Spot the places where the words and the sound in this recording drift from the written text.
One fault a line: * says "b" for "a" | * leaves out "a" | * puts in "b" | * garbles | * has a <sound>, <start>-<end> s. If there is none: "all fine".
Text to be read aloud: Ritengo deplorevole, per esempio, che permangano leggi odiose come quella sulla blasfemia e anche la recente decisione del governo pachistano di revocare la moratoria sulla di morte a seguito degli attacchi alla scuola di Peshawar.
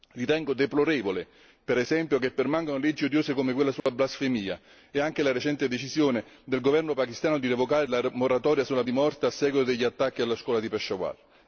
* has a dropout, 3.8-3.9 s